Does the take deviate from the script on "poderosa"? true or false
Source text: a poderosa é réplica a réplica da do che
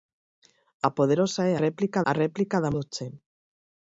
false